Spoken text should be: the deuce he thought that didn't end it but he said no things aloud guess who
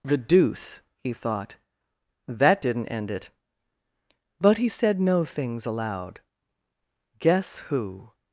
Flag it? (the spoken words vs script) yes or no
no